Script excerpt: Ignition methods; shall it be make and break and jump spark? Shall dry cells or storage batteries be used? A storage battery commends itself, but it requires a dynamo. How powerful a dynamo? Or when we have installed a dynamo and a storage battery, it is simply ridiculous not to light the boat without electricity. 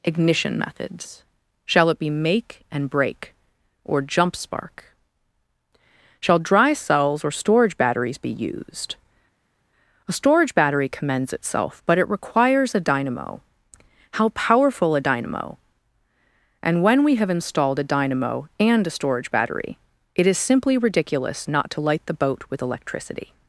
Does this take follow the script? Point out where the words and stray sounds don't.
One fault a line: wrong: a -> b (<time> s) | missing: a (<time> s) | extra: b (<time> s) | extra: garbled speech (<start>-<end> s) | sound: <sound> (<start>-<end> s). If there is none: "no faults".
wrong: and -> or (3.9 s)
wrong: Or -> And (16.6 s)
wrong: without -> with (22.5 s)